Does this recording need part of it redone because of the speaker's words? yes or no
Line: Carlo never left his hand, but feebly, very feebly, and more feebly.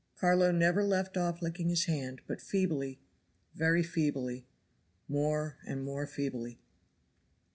yes